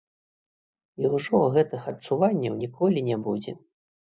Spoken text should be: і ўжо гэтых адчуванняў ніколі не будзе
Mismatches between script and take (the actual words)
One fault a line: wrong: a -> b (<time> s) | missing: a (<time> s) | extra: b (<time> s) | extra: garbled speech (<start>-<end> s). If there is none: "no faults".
no faults